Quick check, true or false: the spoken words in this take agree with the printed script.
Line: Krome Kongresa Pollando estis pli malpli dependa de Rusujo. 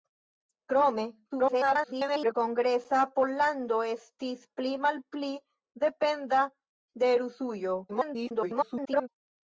false